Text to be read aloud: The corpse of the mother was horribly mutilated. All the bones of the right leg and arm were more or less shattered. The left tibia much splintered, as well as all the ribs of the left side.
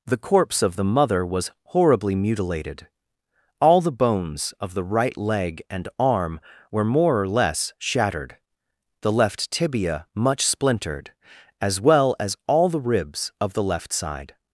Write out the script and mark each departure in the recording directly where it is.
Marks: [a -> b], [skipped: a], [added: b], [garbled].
The corpse of the mother was horribly mutilated. All the bones of the right leg and arm were more or less shattered. The left tibia much splintered, as well as all the ribs of the left side.